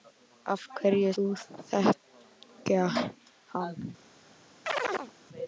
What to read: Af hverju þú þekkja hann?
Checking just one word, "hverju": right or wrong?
right